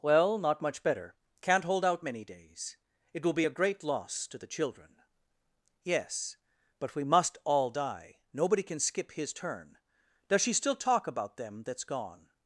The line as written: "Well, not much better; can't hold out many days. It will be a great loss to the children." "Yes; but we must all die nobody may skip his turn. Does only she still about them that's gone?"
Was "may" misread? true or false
true